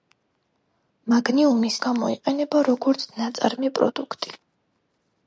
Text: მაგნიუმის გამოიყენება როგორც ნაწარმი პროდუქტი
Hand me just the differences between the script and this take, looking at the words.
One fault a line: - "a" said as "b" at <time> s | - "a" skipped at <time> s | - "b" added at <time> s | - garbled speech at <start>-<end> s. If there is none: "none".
none